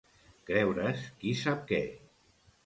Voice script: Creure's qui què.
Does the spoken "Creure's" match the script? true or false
true